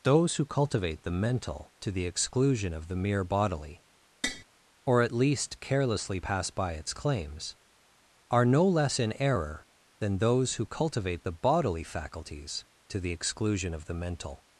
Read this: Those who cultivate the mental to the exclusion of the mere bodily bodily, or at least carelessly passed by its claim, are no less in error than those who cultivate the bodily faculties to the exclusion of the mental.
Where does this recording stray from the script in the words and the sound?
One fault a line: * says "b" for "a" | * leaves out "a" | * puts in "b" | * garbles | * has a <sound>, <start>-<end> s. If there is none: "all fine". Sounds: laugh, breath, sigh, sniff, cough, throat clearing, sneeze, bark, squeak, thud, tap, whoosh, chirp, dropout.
* leaves out "bodily"
* has a tap, 4.2-4.4 s
* says "pass" for "passed"
* says "claims" for "claim"